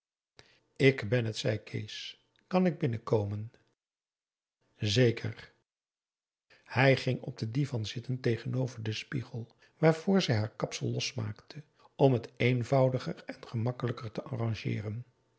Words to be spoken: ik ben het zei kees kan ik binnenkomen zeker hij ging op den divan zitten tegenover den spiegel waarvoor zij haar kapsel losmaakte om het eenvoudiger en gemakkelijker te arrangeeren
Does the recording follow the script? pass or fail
pass